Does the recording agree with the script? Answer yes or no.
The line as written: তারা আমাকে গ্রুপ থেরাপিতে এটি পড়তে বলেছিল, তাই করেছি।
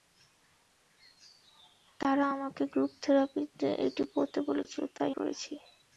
yes